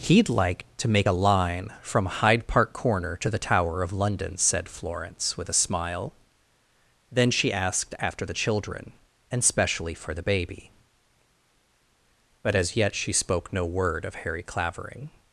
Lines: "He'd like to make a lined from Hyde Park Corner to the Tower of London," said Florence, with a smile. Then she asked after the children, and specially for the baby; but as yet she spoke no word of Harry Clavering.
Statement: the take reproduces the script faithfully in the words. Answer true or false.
false